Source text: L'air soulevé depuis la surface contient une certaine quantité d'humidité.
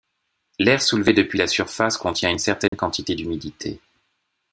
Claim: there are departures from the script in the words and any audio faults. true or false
true